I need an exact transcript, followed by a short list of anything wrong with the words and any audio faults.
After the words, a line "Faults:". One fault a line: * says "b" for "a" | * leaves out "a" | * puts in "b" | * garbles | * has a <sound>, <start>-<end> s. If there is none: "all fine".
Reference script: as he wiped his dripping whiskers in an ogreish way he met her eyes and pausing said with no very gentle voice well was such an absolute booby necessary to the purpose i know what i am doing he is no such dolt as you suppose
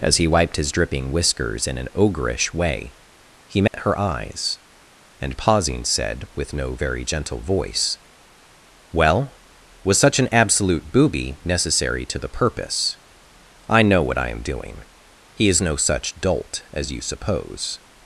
as he wiped his dripping whiskers in an ogreish way he met her eyes and pausing said with no very gentle voice well was such an absolute booby necessary to the purpose i know what i am doing he is no such dolt as you suppose
Faults:
* has a dropout, 3.7-3.7 s